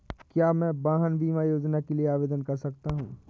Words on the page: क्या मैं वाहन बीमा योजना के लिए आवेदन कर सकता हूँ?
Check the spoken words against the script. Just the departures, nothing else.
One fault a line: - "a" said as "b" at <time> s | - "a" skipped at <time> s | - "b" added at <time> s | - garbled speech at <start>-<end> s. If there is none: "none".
none